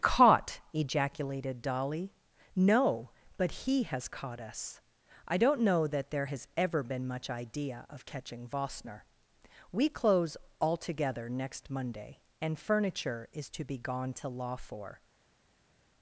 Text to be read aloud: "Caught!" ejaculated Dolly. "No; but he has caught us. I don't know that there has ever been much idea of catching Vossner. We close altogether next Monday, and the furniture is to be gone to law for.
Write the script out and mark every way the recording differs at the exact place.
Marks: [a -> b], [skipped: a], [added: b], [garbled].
"Caught!" ejaculated Dolly. "No; but he has caught us. I don't know that there has ever been much idea of catching Vossner. We close altogether next Monday, and [skipped: the] furniture is to be gone to law for.